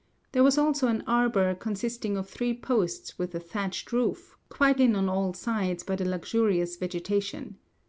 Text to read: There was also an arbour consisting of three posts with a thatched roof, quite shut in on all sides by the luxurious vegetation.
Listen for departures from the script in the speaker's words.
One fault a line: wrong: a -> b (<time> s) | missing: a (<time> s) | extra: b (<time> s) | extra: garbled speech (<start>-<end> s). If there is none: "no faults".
missing: shut (4.8 s)